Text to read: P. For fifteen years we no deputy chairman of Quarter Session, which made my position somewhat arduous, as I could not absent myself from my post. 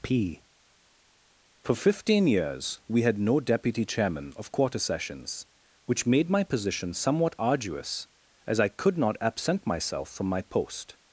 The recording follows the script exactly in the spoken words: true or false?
false